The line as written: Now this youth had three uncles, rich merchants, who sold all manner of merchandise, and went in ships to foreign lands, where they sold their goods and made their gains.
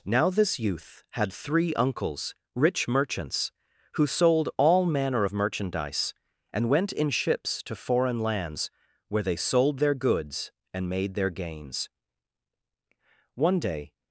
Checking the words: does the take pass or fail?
fail